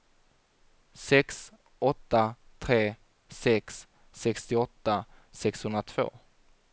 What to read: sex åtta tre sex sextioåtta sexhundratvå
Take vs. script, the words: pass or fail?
pass